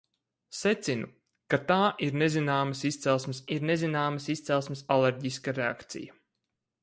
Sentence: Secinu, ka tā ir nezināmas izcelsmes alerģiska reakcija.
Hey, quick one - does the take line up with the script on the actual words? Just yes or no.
no